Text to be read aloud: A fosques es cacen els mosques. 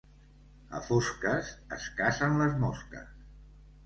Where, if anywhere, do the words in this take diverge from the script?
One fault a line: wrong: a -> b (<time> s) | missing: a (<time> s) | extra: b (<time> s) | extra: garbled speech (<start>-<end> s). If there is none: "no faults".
wrong: els -> les (2.4 s)